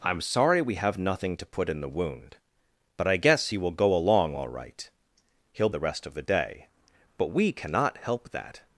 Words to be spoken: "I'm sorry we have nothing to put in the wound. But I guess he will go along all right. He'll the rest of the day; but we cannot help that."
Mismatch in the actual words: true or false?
false